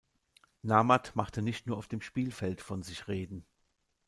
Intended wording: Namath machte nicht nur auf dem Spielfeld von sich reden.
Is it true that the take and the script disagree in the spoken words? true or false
false